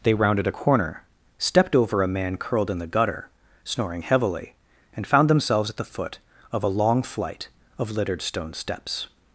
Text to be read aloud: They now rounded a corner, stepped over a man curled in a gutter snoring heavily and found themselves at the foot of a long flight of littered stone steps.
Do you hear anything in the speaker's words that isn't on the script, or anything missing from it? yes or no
yes